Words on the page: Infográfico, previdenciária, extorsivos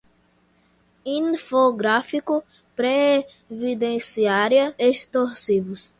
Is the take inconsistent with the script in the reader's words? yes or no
no